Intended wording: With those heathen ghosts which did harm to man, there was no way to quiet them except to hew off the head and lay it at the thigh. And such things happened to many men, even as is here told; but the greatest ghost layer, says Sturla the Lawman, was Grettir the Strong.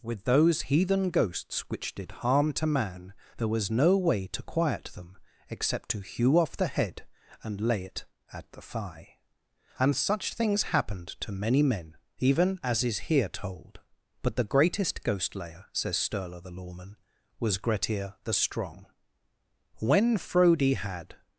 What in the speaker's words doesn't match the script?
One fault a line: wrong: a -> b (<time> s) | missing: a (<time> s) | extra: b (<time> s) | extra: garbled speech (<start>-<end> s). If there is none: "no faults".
extra: When Frodi had (19.8 s)